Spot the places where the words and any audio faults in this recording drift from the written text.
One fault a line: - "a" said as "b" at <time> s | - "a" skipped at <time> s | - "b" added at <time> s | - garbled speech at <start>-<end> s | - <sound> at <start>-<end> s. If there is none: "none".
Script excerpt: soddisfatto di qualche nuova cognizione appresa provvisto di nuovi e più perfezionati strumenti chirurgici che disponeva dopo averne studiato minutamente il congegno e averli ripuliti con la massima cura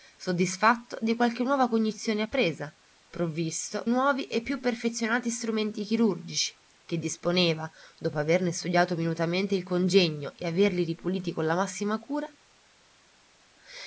- "di" skipped at 3.8 s